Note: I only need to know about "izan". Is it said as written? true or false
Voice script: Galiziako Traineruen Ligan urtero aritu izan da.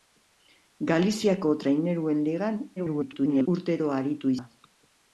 false